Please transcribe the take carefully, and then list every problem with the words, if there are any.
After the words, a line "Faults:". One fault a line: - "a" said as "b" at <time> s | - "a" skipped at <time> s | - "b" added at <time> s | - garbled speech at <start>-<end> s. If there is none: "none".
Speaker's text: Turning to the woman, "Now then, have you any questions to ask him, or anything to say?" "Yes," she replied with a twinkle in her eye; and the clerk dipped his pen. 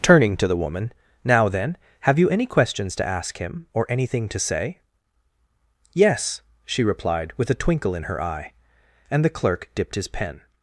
Turning to the woman, "Now then, have you any questions to ask him, or anything to say?" "Yes," she replied with a twinkle in her eye; and the clerk dipped his pen.
Faults:
none